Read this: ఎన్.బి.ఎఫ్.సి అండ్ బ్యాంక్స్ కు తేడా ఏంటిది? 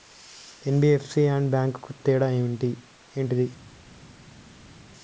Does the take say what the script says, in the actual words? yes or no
yes